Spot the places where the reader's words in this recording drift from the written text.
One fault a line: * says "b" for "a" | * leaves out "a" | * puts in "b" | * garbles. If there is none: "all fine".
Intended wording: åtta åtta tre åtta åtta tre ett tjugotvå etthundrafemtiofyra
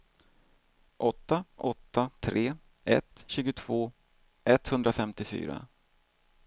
* leaves out "åtta åtta tre"